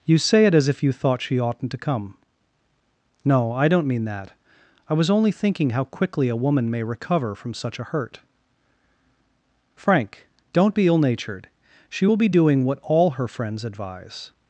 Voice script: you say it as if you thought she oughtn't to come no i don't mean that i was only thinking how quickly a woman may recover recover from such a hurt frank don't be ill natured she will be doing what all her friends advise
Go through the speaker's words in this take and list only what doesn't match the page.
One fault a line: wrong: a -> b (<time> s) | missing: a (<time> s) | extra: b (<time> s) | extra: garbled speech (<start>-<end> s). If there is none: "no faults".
missing: recover (7.3 s)